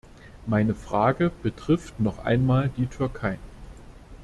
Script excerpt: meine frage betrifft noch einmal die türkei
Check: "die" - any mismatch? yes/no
no